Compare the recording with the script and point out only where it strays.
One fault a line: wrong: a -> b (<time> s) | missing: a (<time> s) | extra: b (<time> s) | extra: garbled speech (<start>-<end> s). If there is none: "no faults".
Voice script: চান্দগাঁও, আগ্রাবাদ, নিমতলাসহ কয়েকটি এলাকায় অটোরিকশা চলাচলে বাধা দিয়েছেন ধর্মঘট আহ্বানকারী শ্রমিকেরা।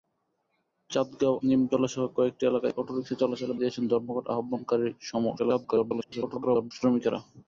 missing: আগ্রাবাদ (1.4 s)
missing: বাধা (3.5 s)
extra: garbled speech (5.4-6.7 s)